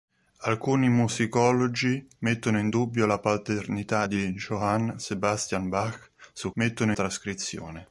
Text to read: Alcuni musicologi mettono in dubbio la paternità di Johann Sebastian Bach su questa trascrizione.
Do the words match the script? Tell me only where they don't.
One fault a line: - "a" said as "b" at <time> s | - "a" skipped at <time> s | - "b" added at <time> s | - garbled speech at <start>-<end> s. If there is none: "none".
- "questa" said as "mettono" at 6.6 s